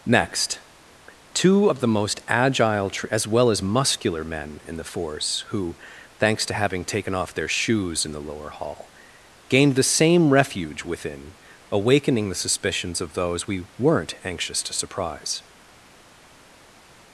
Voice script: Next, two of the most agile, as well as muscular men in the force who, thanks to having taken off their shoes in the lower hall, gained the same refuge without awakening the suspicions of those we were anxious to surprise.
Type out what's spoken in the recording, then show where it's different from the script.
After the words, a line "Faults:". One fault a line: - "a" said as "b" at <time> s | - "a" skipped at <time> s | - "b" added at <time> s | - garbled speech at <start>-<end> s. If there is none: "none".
Next, two of the most agile, as well as muscular men in the force who, thanks to having taken off their shoes in the lower hall, gained the same refuge within awakening the suspicions of those we weren't anxious to surprise.
Faults:
- "without" said as "within" at 10.8 s
- "were" said as "weren't" at 13.8 s